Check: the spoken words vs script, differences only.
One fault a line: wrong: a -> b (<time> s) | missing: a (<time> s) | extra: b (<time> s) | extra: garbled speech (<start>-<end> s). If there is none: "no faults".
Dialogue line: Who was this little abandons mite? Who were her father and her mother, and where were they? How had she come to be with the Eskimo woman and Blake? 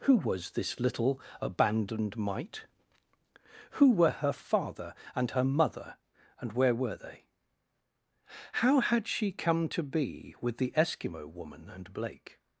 wrong: abandons -> abandoned (1.4 s)